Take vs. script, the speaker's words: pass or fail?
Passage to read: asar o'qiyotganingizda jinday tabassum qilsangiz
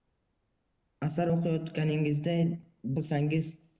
fail